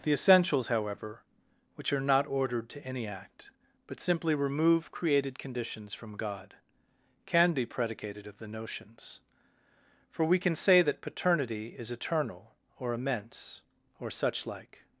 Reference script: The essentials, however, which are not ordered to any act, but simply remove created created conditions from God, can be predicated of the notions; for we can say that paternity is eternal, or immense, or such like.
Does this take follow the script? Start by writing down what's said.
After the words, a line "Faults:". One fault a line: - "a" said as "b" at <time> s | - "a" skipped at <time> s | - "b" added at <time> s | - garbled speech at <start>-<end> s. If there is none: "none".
The essentials, however, which are not ordered to any act, but simply remove created conditions from God, can be predicated of the notions; for we can say that paternity is eternal, or immense, or such like.
Faults:
- "created" skipped at 5.4 s